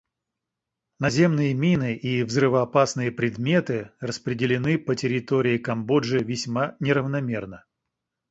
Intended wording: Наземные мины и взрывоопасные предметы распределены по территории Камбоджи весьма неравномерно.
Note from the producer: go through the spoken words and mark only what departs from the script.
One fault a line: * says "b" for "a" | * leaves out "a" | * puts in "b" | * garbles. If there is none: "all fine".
all fine